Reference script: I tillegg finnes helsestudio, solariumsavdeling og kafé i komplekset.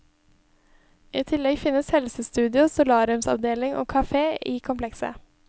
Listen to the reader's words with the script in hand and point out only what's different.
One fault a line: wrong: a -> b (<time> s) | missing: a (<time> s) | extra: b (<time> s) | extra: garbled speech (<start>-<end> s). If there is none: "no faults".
no faults